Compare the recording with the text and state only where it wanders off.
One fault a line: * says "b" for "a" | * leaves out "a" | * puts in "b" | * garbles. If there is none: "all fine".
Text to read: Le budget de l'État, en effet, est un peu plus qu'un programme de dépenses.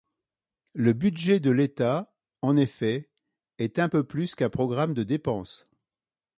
all fine